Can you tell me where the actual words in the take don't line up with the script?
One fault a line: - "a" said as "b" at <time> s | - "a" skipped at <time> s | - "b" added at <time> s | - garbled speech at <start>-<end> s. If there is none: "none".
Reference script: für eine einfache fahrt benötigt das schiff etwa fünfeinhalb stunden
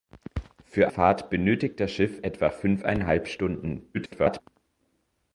- "eine einfache" skipped at 0.9 s
- garbled speech at 3.9-4.4 s